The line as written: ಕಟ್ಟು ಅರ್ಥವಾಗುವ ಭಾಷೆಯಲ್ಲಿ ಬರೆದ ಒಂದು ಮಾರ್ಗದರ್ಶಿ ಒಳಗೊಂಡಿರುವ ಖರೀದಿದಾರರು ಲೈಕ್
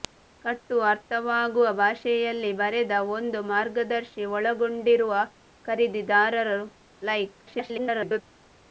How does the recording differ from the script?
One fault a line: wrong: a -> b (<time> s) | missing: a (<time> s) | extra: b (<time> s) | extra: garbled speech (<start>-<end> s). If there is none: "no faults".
extra: garbled speech (7.5-8.2 s)